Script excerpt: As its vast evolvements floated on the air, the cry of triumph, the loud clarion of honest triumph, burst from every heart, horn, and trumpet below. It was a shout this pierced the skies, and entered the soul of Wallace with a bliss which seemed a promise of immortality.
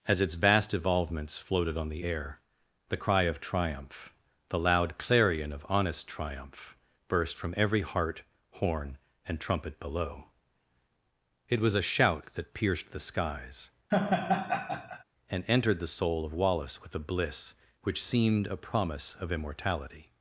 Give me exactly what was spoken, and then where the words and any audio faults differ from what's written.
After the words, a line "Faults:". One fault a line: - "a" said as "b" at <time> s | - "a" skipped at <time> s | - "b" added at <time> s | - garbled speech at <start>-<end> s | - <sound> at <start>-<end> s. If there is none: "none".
As its vast evolvements floated on the air, the cry of triumph, the loud clarion of honest triumph, burst from every heart, horn, and trumpet below. It was a shout that pierced the skies, and entered the soul of Wallace with a bliss which seemed a promise of immortality.
Faults:
- "this" said as "that" at 12.3 s
- laugh at 13.9-15.0 s